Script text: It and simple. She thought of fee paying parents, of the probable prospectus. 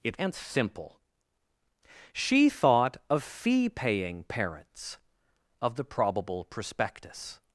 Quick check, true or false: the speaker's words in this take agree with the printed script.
true